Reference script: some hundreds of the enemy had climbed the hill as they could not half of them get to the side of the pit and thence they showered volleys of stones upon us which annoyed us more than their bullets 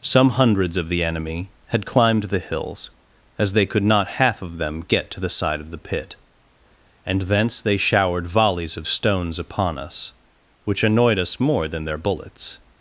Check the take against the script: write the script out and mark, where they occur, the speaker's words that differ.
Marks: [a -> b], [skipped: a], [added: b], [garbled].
some hundreds of the enemy had climbed the [hill -> hills] as they could not half of them get to the side of the pit and thence they showered volleys of stones upon us which annoyed us more than their bullets